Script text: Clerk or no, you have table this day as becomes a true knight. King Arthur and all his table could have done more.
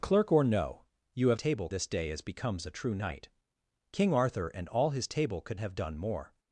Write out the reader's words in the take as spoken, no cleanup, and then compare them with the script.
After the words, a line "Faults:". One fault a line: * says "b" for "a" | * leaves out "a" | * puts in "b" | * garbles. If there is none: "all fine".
Clerk or no, you have table this day as becomes a true knight. King Arthur and all his table could have done more.
Faults:
all fine